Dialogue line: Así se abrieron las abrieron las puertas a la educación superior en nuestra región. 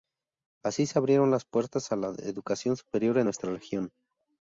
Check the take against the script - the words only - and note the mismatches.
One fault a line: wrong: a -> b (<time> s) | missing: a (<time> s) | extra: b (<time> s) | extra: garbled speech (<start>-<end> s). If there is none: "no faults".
missing: abrieron las (1.4 s)